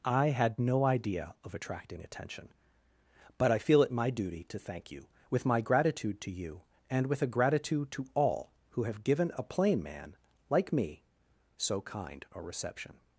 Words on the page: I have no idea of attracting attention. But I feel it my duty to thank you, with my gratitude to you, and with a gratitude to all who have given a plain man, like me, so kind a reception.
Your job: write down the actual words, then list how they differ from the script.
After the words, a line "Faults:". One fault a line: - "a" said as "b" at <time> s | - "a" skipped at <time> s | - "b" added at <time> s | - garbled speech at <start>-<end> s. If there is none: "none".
I had no idea of attracting attention. But I feel it my duty to thank you, with my gratitude to you, and with a gratitude to all who have given a plain man, like me, so kind a reception.
Faults:
- "have" said as "had" at 0.3 s